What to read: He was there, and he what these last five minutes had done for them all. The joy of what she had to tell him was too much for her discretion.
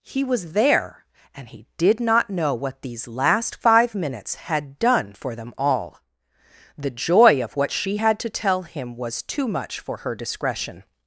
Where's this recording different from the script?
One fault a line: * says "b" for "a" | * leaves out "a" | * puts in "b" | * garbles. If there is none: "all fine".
* puts in "did not know"